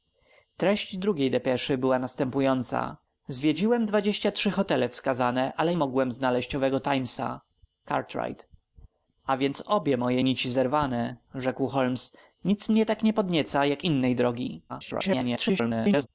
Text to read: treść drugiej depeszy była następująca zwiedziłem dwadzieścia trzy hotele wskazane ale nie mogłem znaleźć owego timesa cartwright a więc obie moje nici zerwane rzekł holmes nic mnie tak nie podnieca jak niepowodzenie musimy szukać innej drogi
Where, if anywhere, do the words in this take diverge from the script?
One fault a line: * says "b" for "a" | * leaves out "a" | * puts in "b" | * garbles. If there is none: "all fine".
* leaves out "nie"
* leaves out "niepowodzenie musimy szukać"
* garbles